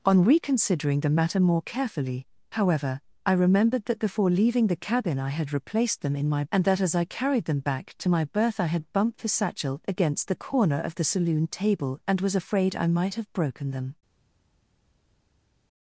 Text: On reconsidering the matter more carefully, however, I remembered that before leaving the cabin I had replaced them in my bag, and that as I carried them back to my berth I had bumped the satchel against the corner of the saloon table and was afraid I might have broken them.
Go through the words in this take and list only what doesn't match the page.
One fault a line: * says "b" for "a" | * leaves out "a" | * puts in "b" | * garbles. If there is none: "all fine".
* leaves out "bag"